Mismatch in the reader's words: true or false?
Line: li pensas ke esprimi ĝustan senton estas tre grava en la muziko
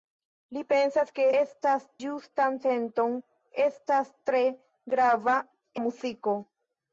true